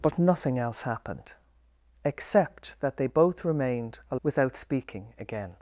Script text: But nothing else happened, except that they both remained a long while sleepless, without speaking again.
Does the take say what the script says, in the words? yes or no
no